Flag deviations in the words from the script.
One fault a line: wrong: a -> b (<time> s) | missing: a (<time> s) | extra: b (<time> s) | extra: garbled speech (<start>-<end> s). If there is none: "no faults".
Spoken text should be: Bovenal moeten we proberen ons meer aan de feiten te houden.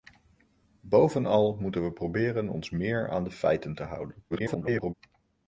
extra: garbled speech (4.3-4.9 s)